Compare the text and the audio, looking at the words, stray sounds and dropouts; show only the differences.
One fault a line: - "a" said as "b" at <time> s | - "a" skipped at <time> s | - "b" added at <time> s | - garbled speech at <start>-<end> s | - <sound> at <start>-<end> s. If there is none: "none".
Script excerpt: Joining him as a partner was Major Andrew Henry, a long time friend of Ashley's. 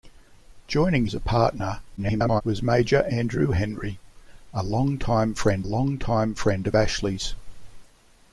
- "him" skipped at 1.1 s
- garbled speech at 2.0-2.4 s
- "long time friend" added at 5.6 s